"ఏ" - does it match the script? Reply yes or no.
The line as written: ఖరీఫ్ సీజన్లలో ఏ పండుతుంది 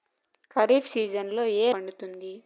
yes